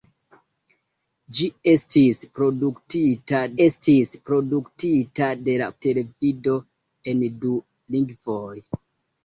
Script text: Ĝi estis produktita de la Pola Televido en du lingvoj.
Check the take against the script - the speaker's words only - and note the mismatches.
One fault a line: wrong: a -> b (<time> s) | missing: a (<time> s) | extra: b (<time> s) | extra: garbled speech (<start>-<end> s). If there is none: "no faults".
extra: estis produktita (3.7 s)
missing: Pola (5.7 s)